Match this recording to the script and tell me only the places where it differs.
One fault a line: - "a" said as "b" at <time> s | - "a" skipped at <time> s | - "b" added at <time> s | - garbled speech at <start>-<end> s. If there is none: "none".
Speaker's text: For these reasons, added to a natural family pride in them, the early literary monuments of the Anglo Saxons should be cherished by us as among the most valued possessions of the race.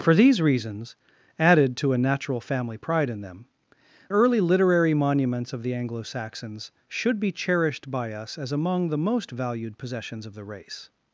- "the" skipped at 3.5 s